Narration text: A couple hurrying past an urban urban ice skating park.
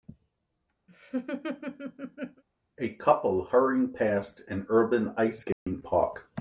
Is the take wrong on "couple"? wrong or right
right